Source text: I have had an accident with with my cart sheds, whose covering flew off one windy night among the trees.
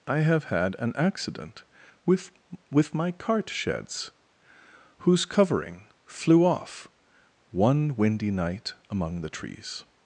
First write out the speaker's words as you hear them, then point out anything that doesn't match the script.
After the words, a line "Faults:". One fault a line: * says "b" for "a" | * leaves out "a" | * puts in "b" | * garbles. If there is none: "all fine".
I have had an accident with with my cart sheds, whose covering flew off one windy night among the trees.
Faults:
all fine